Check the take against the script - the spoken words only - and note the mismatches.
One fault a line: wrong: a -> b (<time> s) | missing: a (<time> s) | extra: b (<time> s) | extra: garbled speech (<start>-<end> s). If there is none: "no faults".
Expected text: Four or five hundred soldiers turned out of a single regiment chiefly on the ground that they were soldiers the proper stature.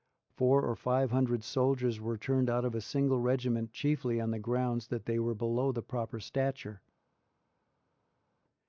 extra: were (2.0 s)
wrong: soldiers -> below (5.3 s)